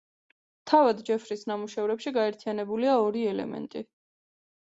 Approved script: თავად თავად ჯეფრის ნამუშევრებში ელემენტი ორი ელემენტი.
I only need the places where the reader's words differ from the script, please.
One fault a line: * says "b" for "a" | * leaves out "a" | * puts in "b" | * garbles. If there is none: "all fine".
* leaves out "თავად"
* says "გაერთიანებულია" for "ელემენტი"